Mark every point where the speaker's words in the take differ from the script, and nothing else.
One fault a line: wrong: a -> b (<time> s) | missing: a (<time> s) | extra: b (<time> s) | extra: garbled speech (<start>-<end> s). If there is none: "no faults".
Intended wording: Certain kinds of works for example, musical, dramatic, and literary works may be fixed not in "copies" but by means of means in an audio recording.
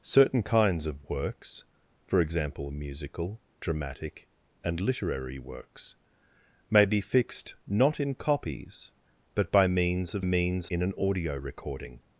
no faults